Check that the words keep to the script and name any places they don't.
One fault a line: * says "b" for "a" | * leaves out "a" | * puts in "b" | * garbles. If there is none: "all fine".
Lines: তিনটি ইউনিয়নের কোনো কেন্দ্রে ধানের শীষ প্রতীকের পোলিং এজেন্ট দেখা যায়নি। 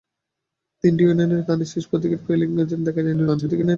* leaves out "কোনো কেন্দ্রে"
* garbles